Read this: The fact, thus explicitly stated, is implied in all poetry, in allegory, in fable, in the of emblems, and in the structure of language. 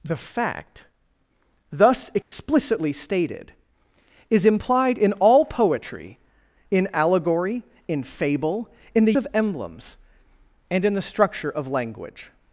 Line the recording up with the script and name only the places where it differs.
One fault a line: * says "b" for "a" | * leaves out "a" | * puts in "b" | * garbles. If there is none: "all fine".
all fine